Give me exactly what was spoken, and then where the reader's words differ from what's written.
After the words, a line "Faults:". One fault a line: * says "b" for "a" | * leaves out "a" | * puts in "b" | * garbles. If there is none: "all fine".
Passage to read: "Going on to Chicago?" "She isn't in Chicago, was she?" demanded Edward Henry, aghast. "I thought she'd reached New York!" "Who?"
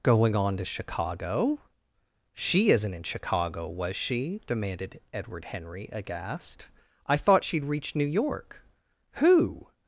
"Going on to Chicago?" "She isn't in Chicago, was she?" demanded Edward Henry, aghast. "I thought she'd reached New York!" "Who?"
Faults:
all fine